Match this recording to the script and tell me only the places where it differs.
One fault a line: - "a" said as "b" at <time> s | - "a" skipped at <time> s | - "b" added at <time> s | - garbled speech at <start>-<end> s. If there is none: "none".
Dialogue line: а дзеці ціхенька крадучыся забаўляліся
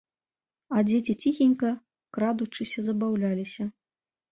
none